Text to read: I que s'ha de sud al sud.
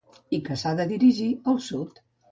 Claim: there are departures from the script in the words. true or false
true